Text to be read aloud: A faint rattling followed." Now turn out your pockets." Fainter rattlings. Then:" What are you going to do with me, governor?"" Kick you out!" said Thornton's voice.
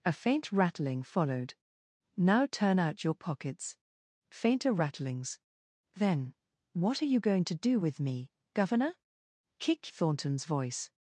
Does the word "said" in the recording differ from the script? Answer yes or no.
yes